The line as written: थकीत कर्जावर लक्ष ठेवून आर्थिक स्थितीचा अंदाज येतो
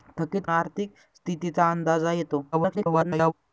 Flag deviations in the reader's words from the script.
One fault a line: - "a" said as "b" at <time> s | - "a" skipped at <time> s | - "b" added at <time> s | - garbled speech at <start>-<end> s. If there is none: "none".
- "कर्जावर लक्ष ठेवून" skipped at 0.5 s
- garbled speech at 2.5-3.3 s